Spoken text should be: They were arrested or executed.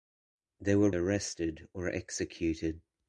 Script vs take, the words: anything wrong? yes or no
no